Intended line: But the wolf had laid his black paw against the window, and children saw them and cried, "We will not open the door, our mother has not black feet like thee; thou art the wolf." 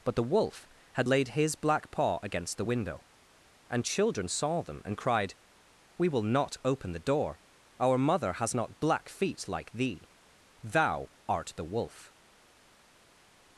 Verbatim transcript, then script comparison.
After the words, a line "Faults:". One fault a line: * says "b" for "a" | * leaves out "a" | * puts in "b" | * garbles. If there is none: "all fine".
But the wolf had laid his black paw against the window, and children saw them and cried, "We will not open the door, our mother has not black feet like thee; thou art the wolf."
Faults:
all fine